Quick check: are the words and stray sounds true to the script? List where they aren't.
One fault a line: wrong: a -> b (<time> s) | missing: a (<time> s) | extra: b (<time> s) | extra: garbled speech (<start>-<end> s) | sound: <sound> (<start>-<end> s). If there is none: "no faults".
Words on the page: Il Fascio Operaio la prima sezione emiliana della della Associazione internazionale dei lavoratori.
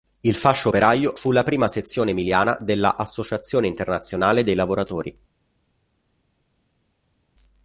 extra: fu (1.1 s)
missing: della (3.0 s)